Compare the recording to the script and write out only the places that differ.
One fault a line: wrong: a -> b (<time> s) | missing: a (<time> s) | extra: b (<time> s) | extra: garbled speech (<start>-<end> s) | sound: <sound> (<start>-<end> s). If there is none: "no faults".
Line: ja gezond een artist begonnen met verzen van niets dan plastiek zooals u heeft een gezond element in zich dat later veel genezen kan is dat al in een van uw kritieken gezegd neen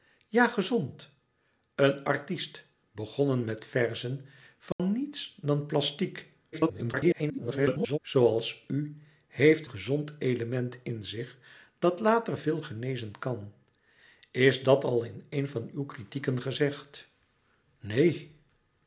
sound: dropout (4.7-4.8 s)
extra: garbled speech (6.5-8.0 s)
missing: een (9.7 s)